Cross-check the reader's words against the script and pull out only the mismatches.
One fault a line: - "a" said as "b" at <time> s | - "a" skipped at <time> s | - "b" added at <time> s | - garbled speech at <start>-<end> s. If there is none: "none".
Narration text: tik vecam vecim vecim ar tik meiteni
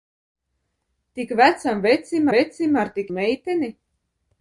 none